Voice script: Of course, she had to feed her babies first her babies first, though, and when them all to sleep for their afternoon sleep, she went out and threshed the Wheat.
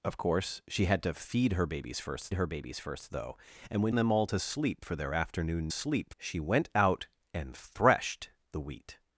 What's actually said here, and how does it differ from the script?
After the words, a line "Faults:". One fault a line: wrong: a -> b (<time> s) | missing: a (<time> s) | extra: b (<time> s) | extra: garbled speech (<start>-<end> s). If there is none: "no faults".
Of course, she had to feed her babies first her babies first, though, and when them all to sleep for their afternoon sleep, she went out and threshed the Wheat.
Faults:
no faults